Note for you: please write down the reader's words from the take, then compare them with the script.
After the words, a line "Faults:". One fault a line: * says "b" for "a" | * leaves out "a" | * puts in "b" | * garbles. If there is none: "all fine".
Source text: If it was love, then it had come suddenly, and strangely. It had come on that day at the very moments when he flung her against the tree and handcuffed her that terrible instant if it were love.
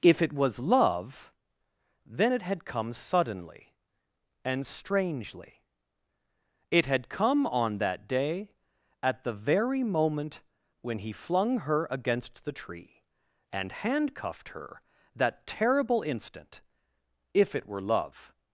If it was love, then it had come suddenly, and strangely. It had come on that day at the very moment when he flung her against the tree and handcuffed her that terrible instant if it were love.
Faults:
* says "moment" for "moments"